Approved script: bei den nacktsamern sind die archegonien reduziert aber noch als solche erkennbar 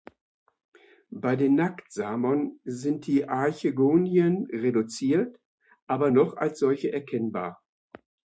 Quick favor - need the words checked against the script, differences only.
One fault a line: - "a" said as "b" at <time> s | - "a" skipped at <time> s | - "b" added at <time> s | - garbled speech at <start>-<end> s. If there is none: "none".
none